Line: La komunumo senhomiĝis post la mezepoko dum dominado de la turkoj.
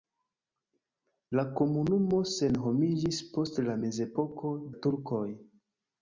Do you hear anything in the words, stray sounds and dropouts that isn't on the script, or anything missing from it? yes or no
yes